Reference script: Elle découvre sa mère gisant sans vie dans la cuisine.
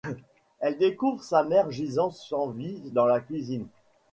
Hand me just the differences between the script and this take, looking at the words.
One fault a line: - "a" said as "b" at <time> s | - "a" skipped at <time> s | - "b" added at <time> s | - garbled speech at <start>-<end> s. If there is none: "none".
none